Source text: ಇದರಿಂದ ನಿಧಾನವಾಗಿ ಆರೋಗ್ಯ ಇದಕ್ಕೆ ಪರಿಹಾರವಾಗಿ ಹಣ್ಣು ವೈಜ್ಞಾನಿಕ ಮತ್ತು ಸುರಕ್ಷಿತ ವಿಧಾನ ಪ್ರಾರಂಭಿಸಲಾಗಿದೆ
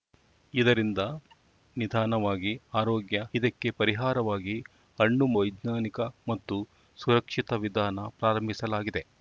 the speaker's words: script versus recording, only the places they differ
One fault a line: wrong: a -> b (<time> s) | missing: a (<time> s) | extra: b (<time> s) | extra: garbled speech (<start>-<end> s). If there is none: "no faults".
no faults